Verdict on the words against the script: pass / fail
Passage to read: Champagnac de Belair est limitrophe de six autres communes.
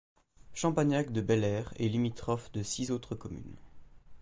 pass